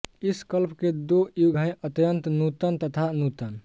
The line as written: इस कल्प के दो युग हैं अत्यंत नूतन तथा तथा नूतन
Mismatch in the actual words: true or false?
true